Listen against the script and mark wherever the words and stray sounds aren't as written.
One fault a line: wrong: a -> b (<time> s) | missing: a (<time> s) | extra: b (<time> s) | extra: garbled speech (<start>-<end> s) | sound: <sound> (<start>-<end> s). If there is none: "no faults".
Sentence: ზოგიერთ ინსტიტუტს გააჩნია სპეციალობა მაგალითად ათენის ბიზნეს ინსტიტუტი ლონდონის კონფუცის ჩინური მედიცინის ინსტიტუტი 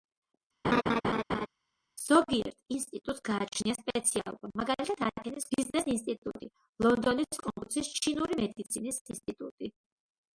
sound: laugh (0.6-1.5 s)